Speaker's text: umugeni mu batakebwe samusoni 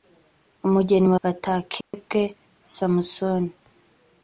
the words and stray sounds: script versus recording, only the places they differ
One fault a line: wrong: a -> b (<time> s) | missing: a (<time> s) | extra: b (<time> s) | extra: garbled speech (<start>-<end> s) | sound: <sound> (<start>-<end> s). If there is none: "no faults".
sound: dropout (1.8-1.9 s)